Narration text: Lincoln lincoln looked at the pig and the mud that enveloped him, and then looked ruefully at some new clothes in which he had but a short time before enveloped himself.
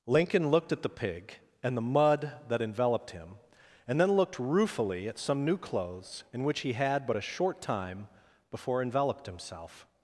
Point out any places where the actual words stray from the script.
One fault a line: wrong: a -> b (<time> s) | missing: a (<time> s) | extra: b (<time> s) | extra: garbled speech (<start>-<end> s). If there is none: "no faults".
missing: lincoln (0.5 s)